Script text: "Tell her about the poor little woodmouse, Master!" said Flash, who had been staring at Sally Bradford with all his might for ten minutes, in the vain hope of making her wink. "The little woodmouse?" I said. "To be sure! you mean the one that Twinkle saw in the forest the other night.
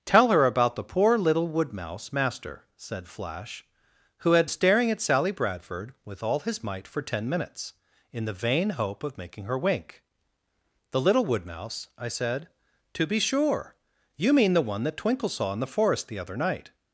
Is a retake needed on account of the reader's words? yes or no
yes